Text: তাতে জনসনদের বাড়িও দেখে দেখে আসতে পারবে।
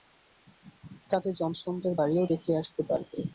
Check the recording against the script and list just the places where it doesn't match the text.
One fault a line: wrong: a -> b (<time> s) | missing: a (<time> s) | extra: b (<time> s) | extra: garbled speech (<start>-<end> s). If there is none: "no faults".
missing: দেখে (2.5 s)